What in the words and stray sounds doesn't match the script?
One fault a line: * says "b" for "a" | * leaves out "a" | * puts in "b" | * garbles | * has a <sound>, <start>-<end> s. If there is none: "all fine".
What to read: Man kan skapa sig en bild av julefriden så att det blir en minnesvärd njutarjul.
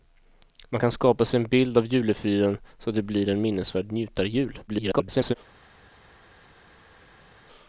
* garbles